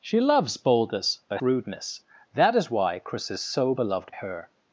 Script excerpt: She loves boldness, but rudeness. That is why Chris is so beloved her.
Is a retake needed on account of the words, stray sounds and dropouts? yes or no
no